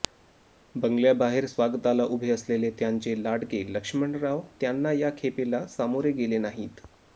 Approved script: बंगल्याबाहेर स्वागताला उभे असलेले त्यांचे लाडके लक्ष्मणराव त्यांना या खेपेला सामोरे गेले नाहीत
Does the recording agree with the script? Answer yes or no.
yes